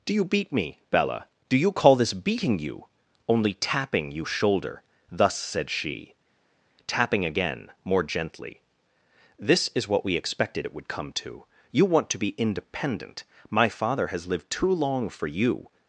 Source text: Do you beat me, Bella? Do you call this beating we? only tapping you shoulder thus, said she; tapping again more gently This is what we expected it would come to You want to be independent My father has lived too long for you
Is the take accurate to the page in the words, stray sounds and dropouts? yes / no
no